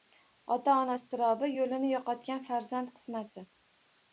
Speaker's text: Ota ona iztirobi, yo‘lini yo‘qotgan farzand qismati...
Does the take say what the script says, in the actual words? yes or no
yes